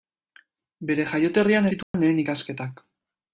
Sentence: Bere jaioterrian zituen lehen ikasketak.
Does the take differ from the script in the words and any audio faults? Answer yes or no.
yes